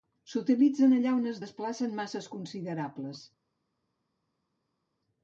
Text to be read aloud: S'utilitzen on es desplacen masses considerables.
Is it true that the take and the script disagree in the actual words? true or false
true